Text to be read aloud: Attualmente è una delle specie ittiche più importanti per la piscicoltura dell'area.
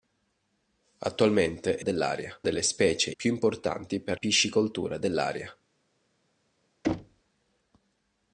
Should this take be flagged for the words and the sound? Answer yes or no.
yes